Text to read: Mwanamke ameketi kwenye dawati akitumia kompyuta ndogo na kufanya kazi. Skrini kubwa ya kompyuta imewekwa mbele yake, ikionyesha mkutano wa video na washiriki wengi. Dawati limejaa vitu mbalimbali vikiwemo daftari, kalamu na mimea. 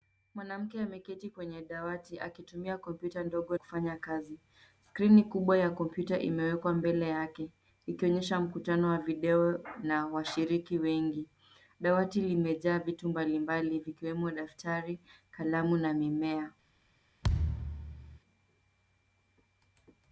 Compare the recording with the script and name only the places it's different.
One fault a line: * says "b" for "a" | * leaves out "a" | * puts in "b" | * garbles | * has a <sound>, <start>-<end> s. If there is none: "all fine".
* leaves out "na"
* has a thud, 17.2-18.2 s